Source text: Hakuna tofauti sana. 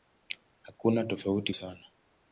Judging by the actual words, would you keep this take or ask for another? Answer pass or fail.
pass